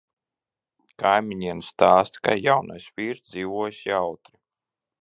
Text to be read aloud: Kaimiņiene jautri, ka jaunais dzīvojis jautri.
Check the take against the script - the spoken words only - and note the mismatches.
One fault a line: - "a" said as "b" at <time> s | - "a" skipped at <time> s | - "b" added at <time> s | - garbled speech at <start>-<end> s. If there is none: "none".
- "jautri" said as "stāsta" at 1.7 s
- "vīrs" added at 3.0 s